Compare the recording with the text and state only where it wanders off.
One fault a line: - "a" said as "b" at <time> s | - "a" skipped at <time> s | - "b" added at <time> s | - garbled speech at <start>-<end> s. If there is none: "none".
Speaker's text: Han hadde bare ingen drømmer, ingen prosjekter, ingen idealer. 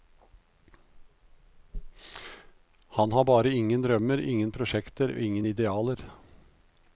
- "hadde" said as "har" at 3.1 s